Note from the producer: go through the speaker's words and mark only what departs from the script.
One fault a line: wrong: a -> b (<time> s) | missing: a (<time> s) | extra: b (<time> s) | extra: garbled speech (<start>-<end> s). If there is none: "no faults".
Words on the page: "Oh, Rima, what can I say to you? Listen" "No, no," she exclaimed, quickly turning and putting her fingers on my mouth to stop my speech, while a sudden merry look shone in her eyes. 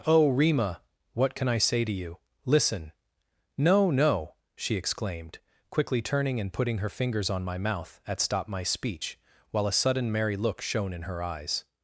wrong: to -> at (8.1 s)